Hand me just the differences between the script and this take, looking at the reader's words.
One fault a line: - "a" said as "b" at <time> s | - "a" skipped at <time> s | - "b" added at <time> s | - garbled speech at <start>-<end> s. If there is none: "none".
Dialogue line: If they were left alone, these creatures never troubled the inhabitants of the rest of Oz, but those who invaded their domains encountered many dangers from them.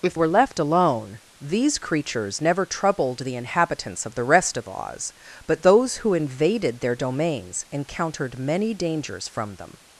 - "they" skipped at 0.2 s